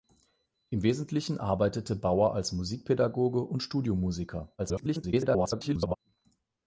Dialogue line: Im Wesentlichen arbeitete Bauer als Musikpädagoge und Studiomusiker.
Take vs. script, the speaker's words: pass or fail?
fail